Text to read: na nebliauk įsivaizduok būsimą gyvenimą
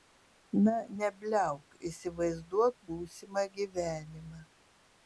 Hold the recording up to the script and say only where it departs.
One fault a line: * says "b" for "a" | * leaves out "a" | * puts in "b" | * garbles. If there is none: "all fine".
all fine